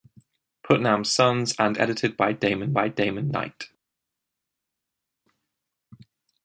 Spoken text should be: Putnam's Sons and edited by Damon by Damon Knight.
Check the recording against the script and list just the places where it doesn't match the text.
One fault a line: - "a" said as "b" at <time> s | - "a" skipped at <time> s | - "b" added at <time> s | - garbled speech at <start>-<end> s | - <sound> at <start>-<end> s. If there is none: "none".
none